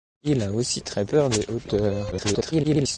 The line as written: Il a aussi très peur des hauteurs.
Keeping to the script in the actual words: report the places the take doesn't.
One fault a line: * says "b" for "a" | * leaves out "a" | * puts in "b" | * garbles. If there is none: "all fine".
* garbles